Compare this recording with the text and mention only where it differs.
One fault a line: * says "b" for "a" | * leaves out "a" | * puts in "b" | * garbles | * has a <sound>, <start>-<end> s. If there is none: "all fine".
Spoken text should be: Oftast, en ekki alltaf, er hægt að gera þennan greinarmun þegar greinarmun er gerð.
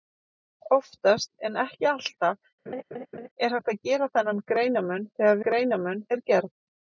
* has a laugh, 2.7-3.3 s